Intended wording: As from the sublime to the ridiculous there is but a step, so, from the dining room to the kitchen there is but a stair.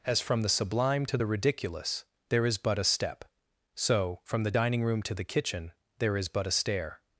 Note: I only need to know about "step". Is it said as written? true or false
true